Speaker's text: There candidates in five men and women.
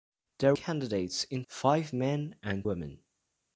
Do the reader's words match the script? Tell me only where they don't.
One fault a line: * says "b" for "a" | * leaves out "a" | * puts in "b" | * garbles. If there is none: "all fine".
all fine